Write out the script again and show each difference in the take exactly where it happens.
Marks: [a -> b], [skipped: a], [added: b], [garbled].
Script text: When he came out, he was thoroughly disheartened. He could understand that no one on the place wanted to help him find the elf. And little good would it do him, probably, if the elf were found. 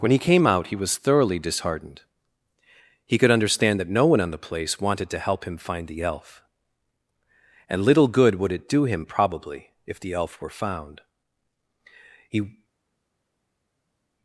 When he came out, he was thoroughly disheartened. He could understand that no one on the place wanted to help him find the elf. And little good would it do him, probably, if the elf were found. [added: He]